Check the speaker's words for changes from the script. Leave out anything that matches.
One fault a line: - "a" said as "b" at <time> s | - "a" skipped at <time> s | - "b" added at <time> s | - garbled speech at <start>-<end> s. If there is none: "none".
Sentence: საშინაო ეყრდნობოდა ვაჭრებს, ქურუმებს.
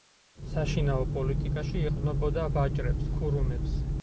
- "პოლიტიკაში" added at 1.2 s